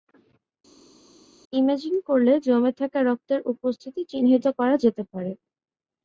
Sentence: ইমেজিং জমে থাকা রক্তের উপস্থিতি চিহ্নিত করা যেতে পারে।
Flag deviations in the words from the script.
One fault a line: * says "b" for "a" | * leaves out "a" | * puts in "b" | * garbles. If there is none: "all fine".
* puts in "করলে"